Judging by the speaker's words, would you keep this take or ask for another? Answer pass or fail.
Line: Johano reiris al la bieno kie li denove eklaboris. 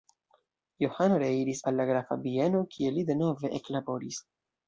fail